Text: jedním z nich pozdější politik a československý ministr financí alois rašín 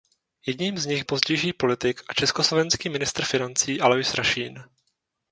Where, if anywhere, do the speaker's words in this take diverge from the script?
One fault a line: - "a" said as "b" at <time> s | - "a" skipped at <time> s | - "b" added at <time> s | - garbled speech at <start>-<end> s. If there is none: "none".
none